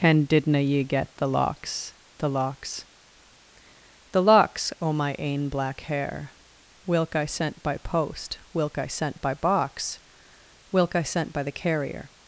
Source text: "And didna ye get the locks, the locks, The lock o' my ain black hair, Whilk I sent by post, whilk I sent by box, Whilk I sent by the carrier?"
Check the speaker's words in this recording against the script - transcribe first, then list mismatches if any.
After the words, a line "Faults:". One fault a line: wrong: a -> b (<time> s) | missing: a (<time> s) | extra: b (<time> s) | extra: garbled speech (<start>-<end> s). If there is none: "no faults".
"And didna ye get the locks, the locks, The locks o' my ain black hair, Whilk I sent by post, whilk I sent by box, Whilk I sent by the carrier?"
Faults:
wrong: lock -> locks (4.2 s)